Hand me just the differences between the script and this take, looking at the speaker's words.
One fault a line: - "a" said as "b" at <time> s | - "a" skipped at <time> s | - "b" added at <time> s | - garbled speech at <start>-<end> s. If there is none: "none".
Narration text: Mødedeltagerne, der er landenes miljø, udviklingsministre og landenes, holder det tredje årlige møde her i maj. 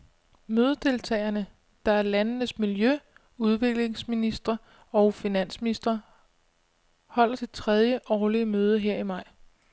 - "landenes" said as "finansministre" at 5.1 s